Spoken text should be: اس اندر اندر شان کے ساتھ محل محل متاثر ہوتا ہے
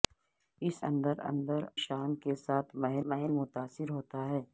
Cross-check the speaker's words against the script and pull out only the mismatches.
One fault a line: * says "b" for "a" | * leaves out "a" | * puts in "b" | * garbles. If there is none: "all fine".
all fine